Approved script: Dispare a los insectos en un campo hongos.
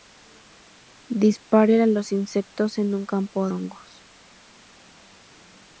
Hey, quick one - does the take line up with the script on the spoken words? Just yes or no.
yes